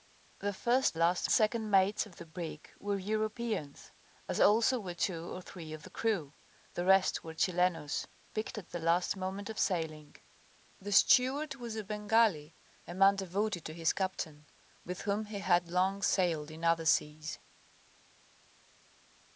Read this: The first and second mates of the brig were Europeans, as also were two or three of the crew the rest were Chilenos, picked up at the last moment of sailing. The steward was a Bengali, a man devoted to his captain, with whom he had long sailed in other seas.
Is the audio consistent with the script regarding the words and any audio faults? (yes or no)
no